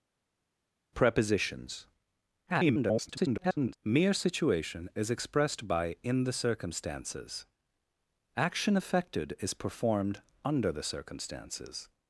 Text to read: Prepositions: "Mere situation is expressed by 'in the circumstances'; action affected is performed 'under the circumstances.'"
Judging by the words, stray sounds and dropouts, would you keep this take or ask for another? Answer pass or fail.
fail